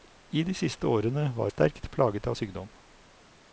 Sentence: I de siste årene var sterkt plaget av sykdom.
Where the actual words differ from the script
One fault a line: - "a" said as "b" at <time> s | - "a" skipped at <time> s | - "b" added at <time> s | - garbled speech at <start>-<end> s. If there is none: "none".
none